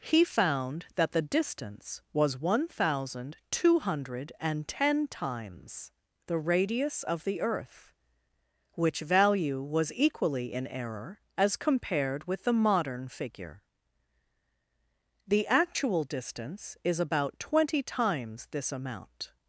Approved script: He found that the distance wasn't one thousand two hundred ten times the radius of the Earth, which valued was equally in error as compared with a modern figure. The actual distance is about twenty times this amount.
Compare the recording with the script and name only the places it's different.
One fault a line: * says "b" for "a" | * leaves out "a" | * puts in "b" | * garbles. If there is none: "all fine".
* says "was" for "wasn't"
* says "value" for "valued"
* says "the" for "a"